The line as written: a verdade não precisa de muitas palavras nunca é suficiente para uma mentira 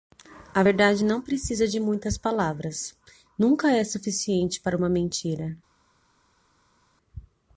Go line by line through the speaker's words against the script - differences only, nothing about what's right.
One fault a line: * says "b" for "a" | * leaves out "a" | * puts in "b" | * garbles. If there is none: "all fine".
all fine